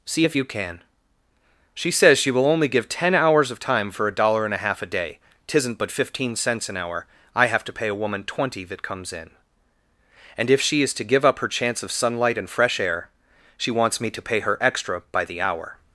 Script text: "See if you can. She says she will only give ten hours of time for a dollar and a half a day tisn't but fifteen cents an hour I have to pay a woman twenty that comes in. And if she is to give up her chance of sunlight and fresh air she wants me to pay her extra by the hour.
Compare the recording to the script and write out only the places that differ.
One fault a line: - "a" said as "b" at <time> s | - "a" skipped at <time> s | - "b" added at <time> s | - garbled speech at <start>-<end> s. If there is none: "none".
none